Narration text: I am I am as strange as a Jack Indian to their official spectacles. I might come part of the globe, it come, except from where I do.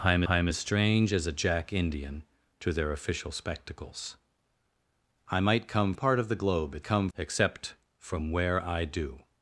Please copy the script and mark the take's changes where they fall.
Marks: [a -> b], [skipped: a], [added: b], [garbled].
I am I am as strange as a Jack Indian to their official spectacles. I might come part of the globe, it come, except from where I do.